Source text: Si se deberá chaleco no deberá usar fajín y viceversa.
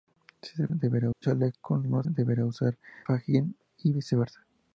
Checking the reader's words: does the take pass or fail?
pass